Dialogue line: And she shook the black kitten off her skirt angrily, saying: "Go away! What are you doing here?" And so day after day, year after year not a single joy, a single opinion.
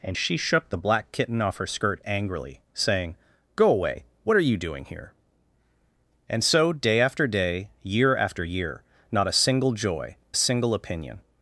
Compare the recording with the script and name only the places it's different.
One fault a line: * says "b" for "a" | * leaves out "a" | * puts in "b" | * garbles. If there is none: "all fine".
all fine